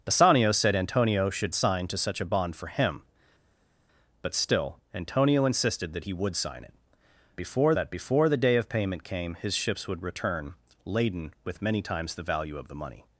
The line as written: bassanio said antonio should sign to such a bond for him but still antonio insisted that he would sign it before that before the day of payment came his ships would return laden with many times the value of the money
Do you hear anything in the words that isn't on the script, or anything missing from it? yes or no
no